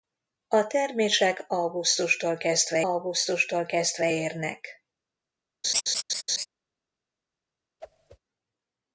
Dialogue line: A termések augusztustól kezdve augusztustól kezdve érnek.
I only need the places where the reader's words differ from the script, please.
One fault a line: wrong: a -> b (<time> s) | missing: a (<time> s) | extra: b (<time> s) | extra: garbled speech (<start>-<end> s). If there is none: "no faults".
no faults